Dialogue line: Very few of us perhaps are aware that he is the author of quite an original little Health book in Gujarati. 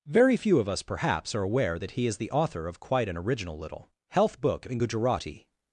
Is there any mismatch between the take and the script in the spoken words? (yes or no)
no